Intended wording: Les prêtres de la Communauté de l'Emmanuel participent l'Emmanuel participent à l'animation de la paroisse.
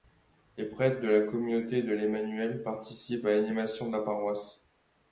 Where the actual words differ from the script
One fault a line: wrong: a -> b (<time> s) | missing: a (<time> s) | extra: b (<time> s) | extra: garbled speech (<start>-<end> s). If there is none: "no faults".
missing: l'Emmanuel participent (3.3 s)